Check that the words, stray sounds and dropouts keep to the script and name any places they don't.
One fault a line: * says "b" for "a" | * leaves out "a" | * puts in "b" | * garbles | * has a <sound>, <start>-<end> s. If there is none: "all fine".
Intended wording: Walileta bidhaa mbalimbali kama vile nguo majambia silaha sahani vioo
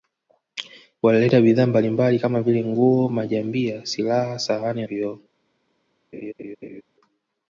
* has a laugh, 6.1-6.8 s